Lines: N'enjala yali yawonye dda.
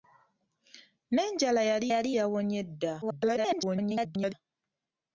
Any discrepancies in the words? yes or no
yes